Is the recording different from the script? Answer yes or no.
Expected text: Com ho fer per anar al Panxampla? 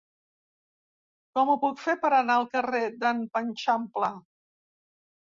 yes